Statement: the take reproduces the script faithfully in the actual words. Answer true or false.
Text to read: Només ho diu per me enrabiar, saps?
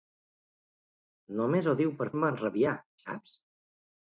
true